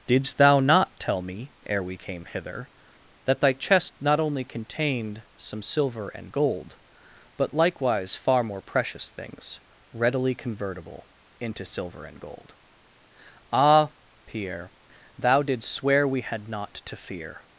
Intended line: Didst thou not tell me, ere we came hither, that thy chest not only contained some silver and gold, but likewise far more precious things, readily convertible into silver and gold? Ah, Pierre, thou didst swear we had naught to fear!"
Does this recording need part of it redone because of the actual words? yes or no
no